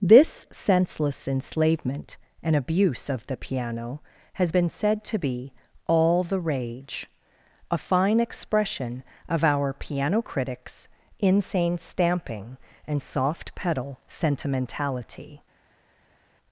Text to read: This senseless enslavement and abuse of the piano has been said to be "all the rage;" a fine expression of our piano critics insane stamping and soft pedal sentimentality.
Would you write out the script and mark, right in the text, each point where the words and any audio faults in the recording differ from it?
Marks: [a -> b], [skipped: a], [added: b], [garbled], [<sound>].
This senseless enslavement and abuse of the piano has been said to be "all the rage;" a fine expression of our piano critics insane stamping and soft pedal sentimentality.